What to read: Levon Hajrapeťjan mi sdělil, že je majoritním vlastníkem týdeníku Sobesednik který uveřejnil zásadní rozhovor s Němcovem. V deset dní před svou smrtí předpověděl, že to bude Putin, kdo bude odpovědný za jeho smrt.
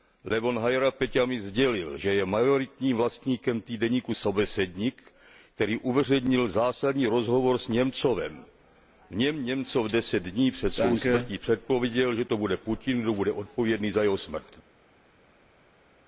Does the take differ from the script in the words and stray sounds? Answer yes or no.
yes